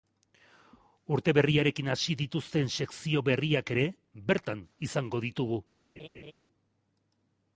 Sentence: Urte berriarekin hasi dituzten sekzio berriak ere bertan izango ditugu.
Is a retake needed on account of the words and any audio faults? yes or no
yes